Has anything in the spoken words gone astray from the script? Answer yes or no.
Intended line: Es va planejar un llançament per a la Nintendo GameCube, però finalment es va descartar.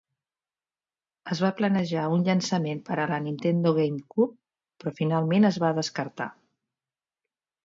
no